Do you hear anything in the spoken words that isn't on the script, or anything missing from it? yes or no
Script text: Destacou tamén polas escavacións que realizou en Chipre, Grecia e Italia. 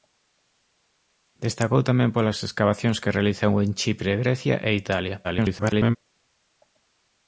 yes